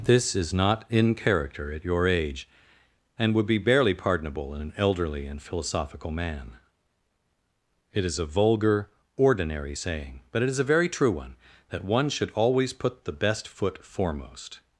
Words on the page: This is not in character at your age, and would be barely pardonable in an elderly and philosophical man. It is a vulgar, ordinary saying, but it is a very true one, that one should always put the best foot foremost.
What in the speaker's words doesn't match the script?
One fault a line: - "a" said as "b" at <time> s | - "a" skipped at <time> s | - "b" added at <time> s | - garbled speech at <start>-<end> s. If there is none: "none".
none